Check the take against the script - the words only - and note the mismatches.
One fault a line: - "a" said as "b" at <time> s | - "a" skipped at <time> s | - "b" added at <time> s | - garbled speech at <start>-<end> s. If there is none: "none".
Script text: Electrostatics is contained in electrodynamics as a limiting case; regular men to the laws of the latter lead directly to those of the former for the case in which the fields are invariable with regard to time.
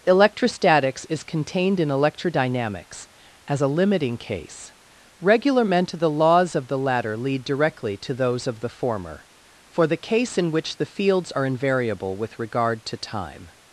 none